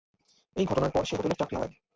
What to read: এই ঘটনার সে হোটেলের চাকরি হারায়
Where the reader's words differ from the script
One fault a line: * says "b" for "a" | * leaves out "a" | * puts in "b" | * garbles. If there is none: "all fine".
* puts in "পর"